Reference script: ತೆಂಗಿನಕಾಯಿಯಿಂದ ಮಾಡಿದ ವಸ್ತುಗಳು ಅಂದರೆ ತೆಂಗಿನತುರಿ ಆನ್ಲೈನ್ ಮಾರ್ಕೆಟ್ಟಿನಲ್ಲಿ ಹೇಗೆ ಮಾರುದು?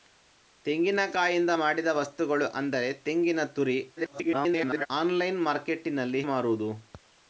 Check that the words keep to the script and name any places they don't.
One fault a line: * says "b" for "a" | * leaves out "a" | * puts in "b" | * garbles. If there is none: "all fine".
* garbles
* leaves out "ಹೇಗೆ"